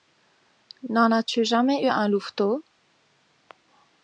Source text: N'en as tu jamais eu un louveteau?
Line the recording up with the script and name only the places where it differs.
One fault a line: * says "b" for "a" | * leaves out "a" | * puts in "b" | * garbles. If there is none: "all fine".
all fine